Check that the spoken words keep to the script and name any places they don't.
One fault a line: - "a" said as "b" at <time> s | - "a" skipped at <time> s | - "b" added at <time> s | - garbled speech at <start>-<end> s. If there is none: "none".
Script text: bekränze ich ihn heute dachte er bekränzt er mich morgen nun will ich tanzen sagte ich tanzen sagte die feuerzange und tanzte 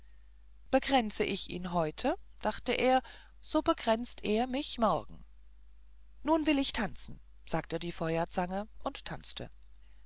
- "so" added at 3.4 s
- "ich tanzen sagte" skipped at 7.8 s